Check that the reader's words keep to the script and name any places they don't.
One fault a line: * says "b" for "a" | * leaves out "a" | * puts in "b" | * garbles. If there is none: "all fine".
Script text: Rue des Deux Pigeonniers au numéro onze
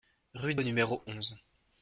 * leaves out "des Deux Pigeonniers"